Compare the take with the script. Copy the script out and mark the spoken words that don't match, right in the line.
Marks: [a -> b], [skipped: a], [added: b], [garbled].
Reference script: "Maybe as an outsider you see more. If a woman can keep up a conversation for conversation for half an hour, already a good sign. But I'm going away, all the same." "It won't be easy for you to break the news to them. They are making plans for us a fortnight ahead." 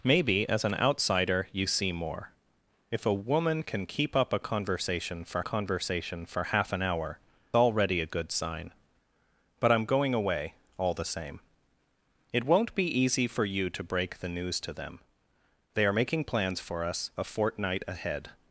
"Maybe as an outsider you see more. If a woman can keep up a conversation for conversation for half an hour, already a good sign. But I'm going away, all the same." "It won't be easy for you to break the news to them. They are making plans for us a fortnight ahead."